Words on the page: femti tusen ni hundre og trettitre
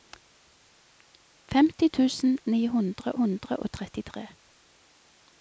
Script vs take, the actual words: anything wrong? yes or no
yes